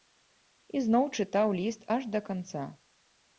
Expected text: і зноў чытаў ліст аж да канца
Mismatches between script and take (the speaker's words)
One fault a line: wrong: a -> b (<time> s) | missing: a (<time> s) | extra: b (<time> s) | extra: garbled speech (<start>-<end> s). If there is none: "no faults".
no faults